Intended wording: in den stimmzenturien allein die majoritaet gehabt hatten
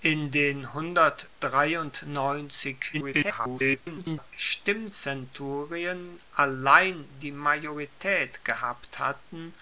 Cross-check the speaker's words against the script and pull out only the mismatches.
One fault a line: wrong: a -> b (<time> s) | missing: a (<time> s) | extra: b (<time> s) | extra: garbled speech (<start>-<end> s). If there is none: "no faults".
extra: garbled speech (2.9-4.3 s)